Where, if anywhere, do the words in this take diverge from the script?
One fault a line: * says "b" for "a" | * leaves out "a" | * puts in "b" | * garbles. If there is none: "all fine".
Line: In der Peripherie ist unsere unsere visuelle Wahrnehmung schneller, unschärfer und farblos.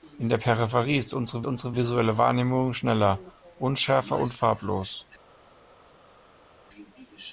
all fine